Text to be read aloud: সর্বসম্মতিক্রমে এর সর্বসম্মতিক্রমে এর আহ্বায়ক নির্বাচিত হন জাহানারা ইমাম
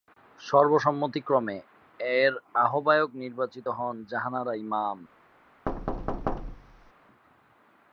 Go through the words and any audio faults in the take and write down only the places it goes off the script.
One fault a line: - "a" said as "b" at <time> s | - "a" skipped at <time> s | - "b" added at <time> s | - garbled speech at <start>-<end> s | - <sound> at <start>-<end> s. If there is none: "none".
- "সর্বসম্মতিক্রমে এর" skipped at 2.3 s
- thud at 5.7-6.9 s